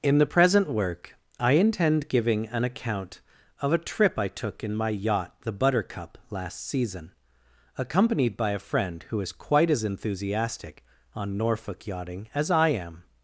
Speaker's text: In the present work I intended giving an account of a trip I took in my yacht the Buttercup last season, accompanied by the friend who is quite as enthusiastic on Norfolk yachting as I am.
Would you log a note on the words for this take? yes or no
yes